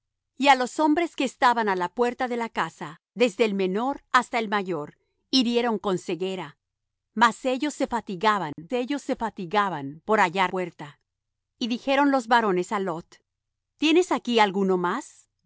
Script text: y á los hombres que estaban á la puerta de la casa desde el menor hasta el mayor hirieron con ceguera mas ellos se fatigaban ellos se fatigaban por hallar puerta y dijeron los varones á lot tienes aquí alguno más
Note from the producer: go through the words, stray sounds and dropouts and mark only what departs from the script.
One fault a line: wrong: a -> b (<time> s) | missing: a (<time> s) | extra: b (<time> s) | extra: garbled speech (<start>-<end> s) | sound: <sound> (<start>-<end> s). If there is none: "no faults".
sound: dropout (8.5-8.6 s)